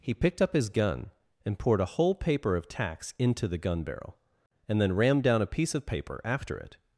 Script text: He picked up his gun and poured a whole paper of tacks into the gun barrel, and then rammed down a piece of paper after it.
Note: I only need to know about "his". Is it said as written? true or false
true